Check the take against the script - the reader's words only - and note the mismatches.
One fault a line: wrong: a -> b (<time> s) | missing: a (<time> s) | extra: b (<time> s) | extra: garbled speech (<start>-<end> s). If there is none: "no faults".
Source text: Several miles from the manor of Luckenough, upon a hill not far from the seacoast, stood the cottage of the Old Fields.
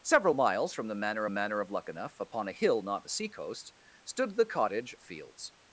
extra: manor (1.3 s)
missing: far from (3.1 s)
missing: of the Old (4.9 s)